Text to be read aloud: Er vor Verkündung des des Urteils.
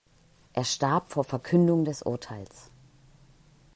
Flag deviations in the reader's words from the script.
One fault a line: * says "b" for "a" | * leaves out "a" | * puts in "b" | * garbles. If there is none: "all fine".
* puts in "starb"
* leaves out "des"